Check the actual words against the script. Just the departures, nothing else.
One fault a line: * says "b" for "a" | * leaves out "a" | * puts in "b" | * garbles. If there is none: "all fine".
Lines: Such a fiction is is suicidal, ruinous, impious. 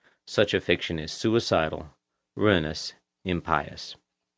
* leaves out "is"